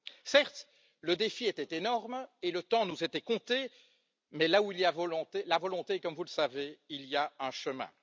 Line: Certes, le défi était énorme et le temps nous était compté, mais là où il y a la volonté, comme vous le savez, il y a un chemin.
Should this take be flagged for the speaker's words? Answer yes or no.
no